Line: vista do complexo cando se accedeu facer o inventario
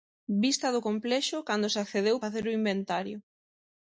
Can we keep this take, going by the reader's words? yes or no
yes